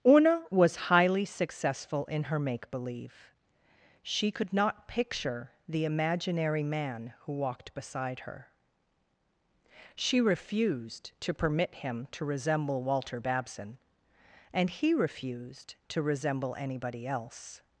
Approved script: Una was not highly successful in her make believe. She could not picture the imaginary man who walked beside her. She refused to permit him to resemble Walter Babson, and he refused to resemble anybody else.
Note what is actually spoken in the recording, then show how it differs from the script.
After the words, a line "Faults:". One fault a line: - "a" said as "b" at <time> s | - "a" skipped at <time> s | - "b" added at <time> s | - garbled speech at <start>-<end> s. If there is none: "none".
Una was highly successful in her make believe. She could not picture the imaginary man who walked beside her. She refused to permit him to resemble Walter Babson, and he refused to resemble anybody else.
Faults:
- "not" skipped at 0.9 s